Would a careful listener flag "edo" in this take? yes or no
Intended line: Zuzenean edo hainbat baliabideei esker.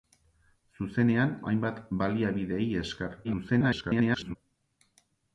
yes